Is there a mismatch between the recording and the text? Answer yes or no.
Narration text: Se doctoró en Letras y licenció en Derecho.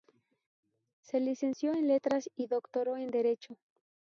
yes